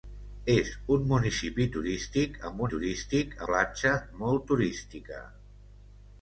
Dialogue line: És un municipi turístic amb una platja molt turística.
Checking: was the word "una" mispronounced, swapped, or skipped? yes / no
yes